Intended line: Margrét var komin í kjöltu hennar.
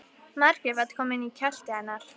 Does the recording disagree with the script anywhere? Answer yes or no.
no